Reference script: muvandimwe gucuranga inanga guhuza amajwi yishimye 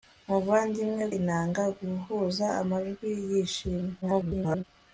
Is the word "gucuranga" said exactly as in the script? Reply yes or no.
no